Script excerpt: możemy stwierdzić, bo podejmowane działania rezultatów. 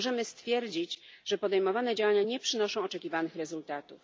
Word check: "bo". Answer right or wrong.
wrong